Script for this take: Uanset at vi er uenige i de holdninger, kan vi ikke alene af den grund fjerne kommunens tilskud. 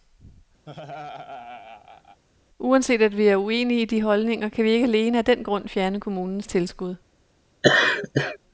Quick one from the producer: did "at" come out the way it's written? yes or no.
yes